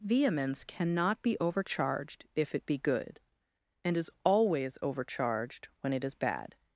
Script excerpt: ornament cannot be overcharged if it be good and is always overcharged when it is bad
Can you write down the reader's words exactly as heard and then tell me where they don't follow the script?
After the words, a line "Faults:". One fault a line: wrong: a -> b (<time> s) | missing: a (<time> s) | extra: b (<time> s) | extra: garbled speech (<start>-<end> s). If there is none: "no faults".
vehemence cannot be overcharged if it be good and is always overcharged when it is bad
Faults:
wrong: ornament -> vehemence (0.0 s)